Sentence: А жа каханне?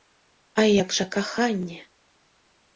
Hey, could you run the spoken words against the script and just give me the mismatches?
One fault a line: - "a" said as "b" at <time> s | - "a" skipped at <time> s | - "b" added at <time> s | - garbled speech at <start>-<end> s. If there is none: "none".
- "як" added at 0.8 s